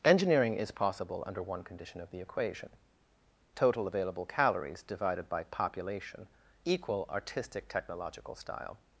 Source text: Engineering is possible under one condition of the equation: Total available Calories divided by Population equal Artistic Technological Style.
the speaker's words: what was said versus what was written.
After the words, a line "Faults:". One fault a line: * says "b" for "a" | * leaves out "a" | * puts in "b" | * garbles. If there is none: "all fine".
Engineering is possible under one condition of the equation: Total available Calories divided by Population equal Artistic Technological Style.
Faults:
all fine